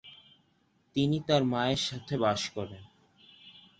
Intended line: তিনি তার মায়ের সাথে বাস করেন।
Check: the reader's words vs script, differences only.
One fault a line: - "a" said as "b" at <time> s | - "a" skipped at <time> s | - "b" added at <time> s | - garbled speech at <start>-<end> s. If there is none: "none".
none